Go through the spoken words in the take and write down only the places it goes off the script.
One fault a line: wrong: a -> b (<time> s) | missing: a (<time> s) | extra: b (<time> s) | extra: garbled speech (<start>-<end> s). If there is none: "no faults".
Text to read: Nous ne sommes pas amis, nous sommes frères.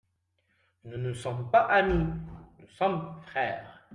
no faults